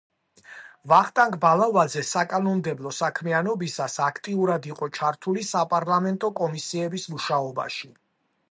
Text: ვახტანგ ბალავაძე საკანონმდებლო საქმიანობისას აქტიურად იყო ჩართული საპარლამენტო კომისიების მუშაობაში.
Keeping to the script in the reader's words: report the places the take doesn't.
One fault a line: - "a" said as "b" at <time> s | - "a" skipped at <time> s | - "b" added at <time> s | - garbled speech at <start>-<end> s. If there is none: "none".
none